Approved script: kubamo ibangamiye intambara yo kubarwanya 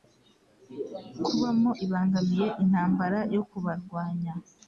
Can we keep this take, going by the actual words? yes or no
yes